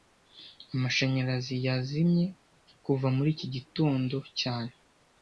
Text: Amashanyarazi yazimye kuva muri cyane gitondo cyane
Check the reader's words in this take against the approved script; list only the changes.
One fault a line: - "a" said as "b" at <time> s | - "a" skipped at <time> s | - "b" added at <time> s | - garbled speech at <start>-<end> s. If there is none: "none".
- "cyane" said as "iki" at 3.4 s